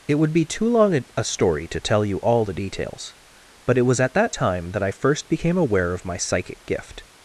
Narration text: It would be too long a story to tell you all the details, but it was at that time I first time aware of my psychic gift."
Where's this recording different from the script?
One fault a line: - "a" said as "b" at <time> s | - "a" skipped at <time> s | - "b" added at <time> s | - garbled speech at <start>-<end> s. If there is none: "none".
- "that" added at 4.7 s
- "time" said as "became" at 5.3 s